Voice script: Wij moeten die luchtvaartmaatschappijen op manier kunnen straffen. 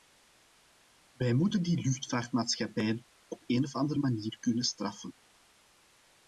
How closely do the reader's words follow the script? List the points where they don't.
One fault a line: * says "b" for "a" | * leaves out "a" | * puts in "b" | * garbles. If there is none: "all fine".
* puts in "een of andere"